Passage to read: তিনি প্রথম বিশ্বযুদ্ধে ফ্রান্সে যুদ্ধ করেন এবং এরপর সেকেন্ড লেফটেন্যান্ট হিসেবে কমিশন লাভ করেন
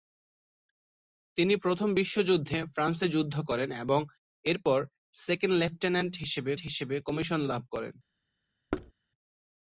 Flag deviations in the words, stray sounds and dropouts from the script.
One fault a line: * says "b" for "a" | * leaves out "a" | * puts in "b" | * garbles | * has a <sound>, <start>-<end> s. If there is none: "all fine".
* puts in "হিসেবে"
* has a thud, 8.7-8.9 s